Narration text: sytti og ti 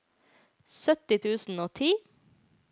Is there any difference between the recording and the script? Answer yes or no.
yes